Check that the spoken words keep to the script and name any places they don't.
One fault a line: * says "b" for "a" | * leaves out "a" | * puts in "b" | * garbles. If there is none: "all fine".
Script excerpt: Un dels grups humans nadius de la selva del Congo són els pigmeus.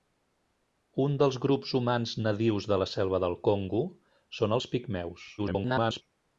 * garbles